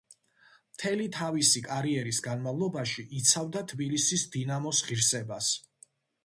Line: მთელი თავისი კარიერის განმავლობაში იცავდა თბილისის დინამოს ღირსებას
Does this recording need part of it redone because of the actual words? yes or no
no